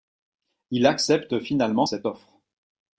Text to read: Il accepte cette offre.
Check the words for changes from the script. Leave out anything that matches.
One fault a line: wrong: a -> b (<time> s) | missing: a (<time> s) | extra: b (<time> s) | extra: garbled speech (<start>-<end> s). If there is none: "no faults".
extra: finalement (1.4 s)